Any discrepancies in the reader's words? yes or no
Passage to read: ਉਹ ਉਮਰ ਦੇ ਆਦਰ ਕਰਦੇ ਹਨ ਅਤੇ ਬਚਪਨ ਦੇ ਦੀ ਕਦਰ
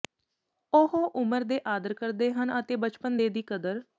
no